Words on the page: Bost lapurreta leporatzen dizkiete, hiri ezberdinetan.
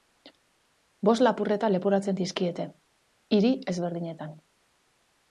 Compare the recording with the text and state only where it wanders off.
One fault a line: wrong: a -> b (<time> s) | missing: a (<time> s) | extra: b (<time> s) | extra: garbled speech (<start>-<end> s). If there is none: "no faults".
no faults